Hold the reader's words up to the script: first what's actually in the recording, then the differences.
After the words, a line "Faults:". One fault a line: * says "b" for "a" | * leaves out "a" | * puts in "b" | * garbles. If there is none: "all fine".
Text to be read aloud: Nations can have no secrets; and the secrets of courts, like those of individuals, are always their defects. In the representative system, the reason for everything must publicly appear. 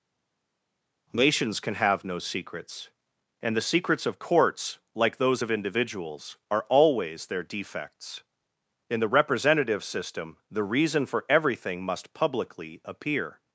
Nations can have no secrets; and the secrets of courts, like those of individuals, are always their defects. In the representative system, the reason for everything must publicly appear.
Faults:
all fine